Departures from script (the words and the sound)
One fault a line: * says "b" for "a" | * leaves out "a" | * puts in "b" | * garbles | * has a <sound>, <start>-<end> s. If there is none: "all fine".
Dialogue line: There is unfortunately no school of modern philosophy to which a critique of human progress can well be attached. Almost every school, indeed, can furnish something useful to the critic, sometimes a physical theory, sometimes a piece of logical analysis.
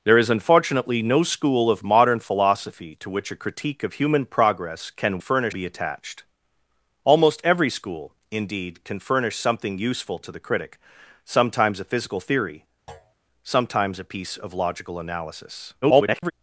* says "furnish" for "well"
* has a thud, 12.9-13.1 s
* garbles